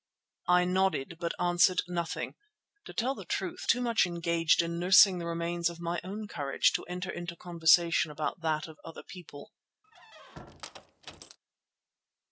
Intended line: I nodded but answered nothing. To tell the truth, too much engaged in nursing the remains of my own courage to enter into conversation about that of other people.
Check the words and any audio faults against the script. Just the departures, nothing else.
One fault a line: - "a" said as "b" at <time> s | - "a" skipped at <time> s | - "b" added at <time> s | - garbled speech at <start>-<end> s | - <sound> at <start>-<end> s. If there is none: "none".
- squeak at 9.8-11.4 s